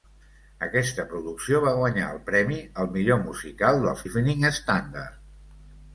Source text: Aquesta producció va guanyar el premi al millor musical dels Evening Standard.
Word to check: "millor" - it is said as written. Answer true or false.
true